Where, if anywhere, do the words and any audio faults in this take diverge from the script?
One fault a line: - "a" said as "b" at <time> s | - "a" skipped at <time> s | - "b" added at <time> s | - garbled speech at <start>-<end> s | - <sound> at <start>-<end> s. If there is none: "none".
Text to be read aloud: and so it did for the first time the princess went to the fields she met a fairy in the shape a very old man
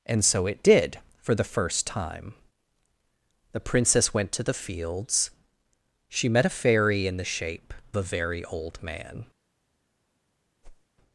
- whoosh at 10.6-10.9 s